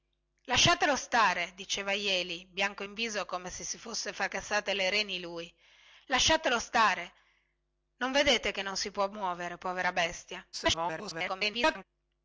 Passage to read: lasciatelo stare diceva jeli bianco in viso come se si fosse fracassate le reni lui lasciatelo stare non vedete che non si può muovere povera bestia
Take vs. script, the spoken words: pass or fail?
fail